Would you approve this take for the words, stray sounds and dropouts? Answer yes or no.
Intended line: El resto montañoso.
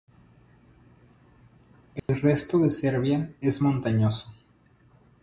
no